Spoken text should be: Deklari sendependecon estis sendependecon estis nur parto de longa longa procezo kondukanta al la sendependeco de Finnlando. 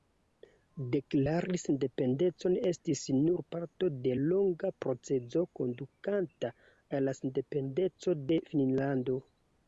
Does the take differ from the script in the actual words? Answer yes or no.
yes